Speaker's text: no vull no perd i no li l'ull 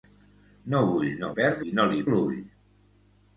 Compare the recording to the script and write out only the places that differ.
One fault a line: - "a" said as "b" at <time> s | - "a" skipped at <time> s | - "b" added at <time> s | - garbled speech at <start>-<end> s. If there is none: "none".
none